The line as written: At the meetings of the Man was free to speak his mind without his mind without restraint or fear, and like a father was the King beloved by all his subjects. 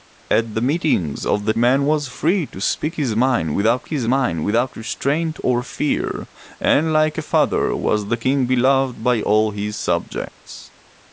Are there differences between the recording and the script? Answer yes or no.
no